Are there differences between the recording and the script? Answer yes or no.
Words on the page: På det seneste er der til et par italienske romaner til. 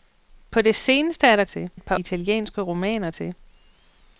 no